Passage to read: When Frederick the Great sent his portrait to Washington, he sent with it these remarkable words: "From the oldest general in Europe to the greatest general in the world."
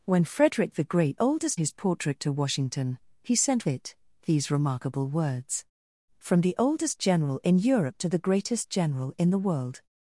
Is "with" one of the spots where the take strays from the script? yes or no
yes